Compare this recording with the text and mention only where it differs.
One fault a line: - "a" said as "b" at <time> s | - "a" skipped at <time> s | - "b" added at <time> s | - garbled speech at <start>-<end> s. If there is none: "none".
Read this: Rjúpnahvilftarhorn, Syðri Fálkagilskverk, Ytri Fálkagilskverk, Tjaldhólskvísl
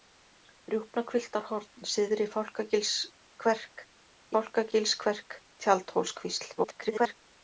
- "Ytri" skipped at 3.9 s
- garbled speech at 6.6-7.2 s